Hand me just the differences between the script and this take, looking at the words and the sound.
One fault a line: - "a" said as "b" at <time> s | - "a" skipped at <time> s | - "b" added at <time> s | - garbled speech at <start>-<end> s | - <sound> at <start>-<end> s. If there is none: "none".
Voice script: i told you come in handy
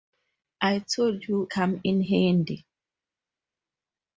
none